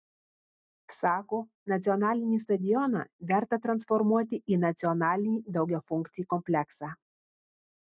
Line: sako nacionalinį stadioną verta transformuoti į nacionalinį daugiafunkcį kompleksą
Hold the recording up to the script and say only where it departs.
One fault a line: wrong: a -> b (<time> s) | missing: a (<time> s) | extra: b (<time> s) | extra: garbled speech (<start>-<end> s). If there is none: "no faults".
no faults